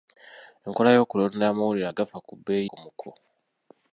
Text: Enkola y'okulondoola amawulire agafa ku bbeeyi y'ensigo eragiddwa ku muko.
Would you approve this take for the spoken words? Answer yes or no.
no